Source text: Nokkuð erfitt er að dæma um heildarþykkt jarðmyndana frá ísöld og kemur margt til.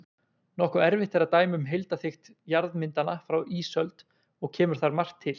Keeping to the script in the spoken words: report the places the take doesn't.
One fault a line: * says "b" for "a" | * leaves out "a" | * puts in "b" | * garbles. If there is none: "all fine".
* puts in "þar"